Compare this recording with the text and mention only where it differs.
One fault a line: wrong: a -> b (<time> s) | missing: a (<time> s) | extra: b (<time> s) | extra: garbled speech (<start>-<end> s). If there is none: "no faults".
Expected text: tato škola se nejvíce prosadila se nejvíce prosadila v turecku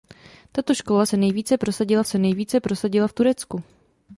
no faults